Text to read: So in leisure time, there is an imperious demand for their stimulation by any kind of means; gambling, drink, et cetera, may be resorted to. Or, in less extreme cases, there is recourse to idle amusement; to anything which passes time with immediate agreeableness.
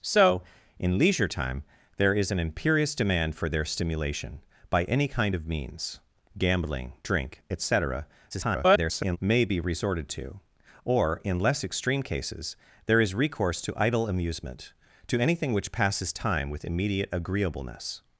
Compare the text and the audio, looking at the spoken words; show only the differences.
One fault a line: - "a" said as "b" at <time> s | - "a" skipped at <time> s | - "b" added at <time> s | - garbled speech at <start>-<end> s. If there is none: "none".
- garbled speech at 8.3-9.2 s